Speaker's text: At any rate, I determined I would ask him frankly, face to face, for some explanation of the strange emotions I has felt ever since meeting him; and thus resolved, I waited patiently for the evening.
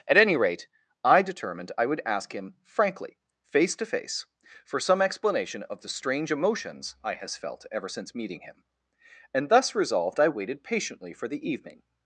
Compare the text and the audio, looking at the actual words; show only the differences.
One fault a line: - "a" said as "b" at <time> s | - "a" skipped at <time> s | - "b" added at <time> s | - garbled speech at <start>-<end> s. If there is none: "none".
none